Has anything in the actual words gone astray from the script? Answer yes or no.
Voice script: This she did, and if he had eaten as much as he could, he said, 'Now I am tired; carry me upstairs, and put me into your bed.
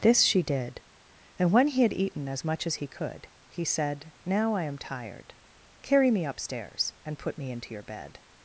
yes